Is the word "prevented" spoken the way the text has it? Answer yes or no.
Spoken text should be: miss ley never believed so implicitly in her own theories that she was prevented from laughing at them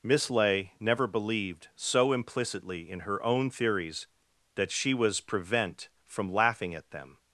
no